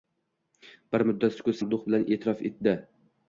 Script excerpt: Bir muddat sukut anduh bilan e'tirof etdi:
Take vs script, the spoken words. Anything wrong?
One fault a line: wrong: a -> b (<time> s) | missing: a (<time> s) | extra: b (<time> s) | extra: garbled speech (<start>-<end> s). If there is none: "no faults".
no faults